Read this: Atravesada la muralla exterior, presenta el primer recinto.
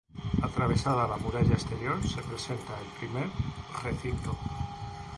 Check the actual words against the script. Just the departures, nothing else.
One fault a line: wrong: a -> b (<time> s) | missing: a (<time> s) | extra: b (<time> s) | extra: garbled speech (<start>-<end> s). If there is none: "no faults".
extra: se (2.0 s)